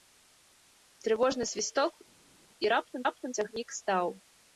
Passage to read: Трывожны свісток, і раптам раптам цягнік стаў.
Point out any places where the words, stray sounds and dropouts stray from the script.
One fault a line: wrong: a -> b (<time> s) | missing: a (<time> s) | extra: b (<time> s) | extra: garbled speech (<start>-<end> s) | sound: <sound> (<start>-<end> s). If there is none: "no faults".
no faults